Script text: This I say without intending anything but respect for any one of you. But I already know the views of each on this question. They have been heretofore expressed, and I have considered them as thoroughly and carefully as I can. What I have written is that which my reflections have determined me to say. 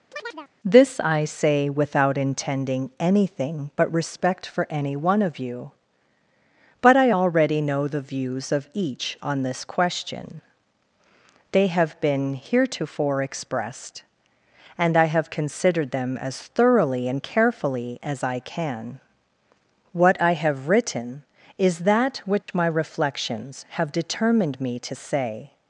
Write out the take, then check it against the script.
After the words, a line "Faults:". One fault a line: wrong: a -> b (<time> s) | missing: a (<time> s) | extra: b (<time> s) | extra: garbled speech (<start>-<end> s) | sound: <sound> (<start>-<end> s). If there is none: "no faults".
This I say without intending anything but respect for any one of you. But I already know the views of each on this question. They have been heretofore expressed, and I have considered them as thoroughly and carefully as I can. What I have written is that which my reflections have determined me to say.
Faults:
sound: chirp (0.1-0.5 s)
sound: dropout (22.4-22.5 s)